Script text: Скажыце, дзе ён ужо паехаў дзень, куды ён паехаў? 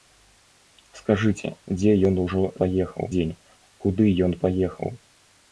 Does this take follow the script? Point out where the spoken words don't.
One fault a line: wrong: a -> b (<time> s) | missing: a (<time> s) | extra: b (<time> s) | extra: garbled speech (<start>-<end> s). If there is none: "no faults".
no faults